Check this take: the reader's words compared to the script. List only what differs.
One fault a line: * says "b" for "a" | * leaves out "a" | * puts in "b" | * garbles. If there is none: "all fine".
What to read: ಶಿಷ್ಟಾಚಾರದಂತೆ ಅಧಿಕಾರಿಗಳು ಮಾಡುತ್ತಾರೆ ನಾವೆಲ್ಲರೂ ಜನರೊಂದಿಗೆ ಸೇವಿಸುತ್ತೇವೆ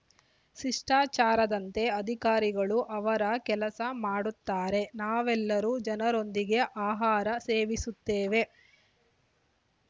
* puts in "ಅವರ ಕೆಲಸ"
* puts in "ಆಹಾರ"